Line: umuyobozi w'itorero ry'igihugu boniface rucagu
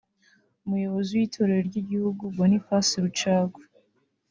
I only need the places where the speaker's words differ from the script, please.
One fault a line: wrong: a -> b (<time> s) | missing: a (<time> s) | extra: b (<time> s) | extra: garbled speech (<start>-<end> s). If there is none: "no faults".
no faults